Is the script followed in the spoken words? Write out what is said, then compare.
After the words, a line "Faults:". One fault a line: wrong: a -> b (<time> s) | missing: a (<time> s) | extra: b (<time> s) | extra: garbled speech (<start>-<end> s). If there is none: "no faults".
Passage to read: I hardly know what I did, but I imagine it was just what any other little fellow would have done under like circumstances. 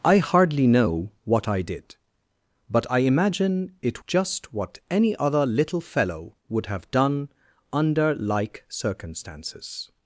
I hardly know what I did, but I imagine it just what any other little fellow would have done under like circumstances.
Faults:
missing: was (4.0 s)